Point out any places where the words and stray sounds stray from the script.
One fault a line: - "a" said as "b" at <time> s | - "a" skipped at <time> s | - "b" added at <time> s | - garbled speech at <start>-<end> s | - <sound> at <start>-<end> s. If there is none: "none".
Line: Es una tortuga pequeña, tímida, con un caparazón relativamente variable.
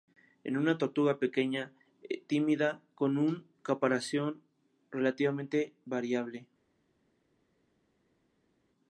none